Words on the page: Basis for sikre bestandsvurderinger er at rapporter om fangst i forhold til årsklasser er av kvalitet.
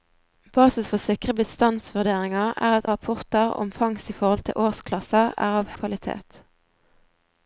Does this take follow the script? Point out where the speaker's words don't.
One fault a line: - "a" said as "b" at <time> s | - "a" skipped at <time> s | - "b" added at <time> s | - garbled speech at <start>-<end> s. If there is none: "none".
none